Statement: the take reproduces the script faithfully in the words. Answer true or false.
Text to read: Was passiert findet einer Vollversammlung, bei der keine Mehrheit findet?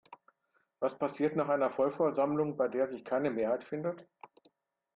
false